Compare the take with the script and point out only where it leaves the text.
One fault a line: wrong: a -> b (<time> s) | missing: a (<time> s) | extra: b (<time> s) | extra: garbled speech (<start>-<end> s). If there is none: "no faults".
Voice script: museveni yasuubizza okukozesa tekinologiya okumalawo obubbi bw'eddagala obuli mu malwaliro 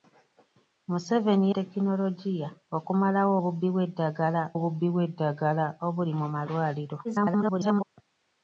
wrong: yasuubizza okukozesa tekinologiya okumalawo -> tekinologiya okumalawo obubbi bw'eddagala (1.5 s)
extra: garbled speech (7.0-7.8 s)